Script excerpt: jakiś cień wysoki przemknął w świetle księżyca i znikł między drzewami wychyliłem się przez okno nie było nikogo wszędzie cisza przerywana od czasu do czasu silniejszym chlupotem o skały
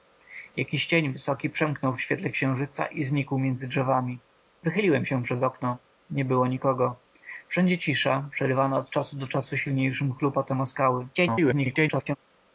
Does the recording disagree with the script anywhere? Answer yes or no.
yes